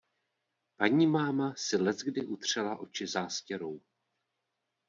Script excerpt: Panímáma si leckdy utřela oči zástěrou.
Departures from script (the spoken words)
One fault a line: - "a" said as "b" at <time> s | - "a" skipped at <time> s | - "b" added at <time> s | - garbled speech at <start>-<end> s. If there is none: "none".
none